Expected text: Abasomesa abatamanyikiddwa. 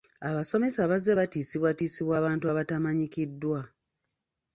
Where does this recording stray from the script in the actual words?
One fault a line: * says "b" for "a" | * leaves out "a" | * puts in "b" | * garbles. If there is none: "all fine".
* puts in "bazze batiisibwatiisibwa abantu"